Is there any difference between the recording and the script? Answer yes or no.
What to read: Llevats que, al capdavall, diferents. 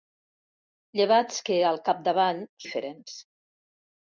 no